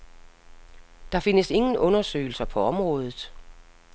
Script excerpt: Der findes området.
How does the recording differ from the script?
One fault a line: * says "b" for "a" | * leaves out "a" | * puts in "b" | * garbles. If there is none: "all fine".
* puts in "ingen undersøgelser på"